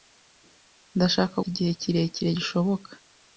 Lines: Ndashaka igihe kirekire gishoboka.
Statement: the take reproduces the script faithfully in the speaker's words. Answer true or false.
true